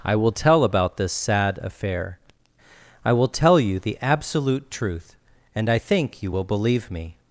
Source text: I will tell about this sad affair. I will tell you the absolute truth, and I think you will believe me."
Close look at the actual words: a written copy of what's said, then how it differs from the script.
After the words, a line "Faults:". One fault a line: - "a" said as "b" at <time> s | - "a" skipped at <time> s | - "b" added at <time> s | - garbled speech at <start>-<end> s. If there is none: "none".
I will tell about this sad affair. I will tell you the absolute truth, and I think you will believe me."
Faults:
none